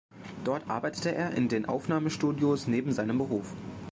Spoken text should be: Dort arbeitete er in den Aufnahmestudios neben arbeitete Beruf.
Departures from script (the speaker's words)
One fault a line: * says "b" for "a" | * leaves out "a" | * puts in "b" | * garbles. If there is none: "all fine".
* says "seinem" for "arbeitete"